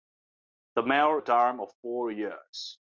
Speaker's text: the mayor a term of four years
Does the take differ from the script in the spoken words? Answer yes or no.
no